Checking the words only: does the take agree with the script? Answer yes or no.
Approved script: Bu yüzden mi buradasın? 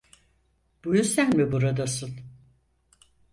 yes